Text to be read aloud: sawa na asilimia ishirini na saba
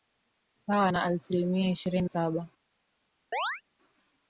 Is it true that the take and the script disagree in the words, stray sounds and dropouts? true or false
true